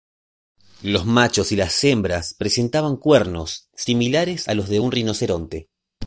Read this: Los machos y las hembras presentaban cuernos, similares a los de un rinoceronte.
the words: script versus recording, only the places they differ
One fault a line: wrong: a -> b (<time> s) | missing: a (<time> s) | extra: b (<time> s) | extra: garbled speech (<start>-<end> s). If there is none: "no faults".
no faults